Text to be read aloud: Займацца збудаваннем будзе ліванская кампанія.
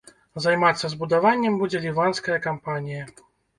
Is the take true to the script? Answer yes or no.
yes